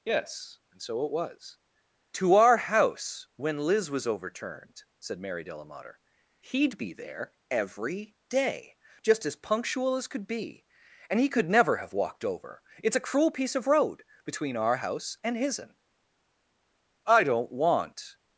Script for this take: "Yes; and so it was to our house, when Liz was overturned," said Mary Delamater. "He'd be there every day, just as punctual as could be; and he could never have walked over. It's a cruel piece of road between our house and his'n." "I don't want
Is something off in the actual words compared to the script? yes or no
no